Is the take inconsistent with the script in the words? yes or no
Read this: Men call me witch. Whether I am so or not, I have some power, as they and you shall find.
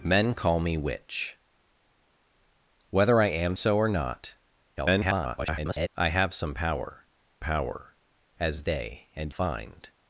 yes